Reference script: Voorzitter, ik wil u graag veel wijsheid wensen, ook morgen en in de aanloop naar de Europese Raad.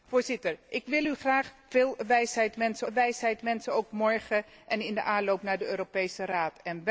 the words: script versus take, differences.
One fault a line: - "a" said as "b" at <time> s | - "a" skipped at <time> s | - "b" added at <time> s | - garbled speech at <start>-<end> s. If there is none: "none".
- "wijsheid wensen" added at 2.9 s